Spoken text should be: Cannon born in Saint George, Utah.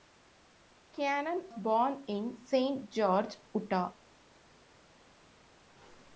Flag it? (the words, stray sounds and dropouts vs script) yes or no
no